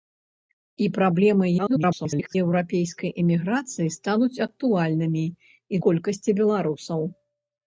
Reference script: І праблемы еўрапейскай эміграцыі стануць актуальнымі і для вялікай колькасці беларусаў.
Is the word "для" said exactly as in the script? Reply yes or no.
no